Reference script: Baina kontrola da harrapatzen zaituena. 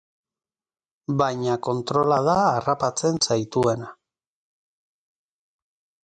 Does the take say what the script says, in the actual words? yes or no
yes